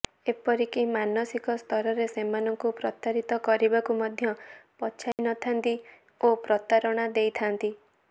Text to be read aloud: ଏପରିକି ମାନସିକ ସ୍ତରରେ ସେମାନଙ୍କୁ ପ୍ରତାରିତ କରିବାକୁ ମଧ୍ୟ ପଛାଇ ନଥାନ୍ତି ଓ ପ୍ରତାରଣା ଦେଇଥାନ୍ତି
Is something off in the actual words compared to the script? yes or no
no